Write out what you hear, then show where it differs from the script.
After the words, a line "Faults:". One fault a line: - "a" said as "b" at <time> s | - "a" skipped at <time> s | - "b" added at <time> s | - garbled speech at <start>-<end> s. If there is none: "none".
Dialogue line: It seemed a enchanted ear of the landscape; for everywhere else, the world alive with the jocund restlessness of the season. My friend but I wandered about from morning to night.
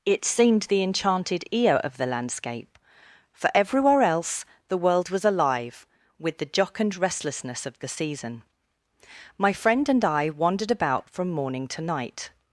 It seemed the enchanted ear of the landscape; for everywhere else, the world was alive with the jocund restlessness of the season. My friend and I wandered about from morning to night.
Faults:
- "a" said as "the" at 0.6 s
- "was" added at 5.1 s
- "but" said as "and" at 9.9 s